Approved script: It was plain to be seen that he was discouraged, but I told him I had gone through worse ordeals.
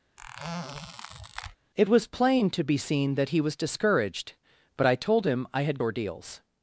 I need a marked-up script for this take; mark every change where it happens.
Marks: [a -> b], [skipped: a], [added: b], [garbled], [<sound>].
[squeak] It was plain to be seen that he was discouraged, but I told him I had [skipped: gone through worse] ordeals.